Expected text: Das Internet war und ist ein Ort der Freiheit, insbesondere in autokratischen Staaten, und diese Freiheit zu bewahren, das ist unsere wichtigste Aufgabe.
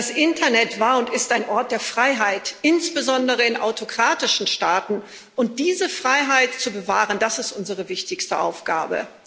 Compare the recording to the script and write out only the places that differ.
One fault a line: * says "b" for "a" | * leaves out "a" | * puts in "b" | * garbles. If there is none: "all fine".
all fine